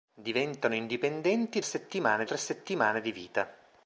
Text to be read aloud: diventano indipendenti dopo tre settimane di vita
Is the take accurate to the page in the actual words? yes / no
no